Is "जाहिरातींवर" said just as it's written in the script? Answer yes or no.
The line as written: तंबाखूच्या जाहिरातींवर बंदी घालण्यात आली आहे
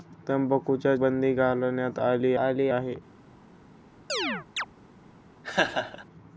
no